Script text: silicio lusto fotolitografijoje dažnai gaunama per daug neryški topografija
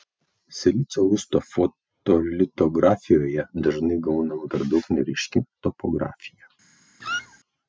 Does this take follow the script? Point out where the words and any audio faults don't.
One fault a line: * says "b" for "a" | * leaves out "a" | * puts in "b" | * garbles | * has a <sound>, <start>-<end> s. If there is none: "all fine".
* has a squeak, 7.0-7.4 s